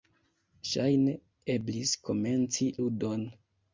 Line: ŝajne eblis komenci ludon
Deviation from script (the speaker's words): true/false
false